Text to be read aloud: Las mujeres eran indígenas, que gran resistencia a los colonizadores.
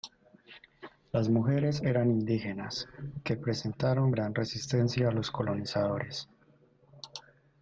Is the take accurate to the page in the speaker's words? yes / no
no